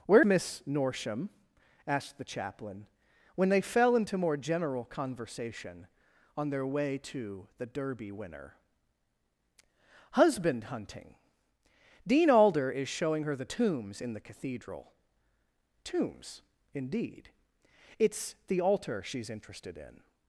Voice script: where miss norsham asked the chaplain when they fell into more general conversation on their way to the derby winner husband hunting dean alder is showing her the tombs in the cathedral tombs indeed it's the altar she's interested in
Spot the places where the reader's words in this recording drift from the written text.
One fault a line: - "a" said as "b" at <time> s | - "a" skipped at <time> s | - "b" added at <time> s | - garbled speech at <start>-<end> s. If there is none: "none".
none